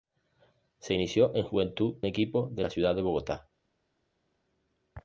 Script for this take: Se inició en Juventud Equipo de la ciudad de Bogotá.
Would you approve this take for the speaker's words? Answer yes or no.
yes